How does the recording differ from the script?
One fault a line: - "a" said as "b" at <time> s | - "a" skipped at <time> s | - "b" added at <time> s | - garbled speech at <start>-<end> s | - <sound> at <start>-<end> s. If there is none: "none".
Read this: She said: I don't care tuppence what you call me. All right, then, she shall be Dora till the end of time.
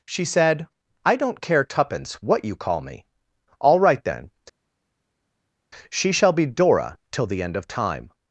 none